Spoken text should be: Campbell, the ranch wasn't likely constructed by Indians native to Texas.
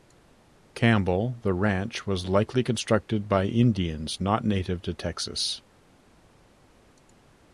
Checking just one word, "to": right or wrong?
right